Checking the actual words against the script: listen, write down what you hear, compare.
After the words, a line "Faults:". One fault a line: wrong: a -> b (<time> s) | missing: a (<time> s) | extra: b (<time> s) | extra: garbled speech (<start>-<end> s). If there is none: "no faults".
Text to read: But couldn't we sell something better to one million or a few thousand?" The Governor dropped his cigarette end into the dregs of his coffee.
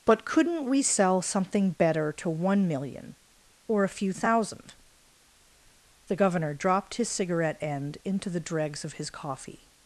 But couldn't we sell something better to one million or a few thousand?" The Governor dropped his cigarette end into the dregs of his coffee.
Faults:
no faults